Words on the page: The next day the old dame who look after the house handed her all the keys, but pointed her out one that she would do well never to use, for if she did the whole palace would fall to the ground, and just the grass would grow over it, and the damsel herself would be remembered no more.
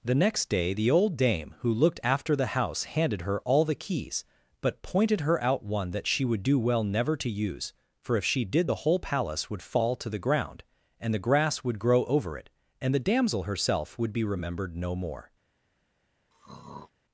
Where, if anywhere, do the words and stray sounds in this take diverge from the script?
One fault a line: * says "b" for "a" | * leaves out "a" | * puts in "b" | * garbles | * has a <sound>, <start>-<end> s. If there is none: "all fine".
* says "looked" for "look"
* leaves out "just"
* has a throat clearing, 16.3-16.9 s